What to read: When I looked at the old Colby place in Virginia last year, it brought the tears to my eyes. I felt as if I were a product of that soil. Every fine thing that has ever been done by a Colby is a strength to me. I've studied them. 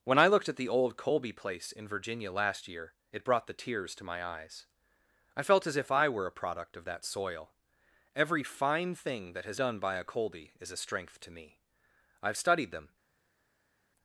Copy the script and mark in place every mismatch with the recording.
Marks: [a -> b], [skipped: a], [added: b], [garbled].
When I looked at the old Colby place in Virginia last year, it brought the tears to my eyes. I felt as if I were a product of that soil. Every fine thing that has [skipped: ever been] done by a Colby is a strength to me. I've studied them.